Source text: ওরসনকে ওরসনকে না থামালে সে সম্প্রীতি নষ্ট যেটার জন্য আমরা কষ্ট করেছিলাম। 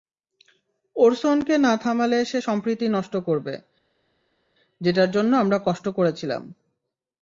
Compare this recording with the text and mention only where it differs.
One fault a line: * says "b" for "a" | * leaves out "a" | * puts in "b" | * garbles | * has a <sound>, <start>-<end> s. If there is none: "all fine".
* leaves out "ওরসনকে"
* puts in "করবে"